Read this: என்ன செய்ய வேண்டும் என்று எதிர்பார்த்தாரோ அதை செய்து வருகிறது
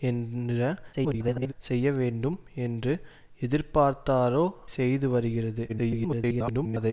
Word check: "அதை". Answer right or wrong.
wrong